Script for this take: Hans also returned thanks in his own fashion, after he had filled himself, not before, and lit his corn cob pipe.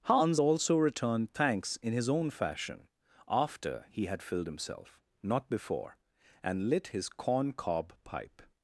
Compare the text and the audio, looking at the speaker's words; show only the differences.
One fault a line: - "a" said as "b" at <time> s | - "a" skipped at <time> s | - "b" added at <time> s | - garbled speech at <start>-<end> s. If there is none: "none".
none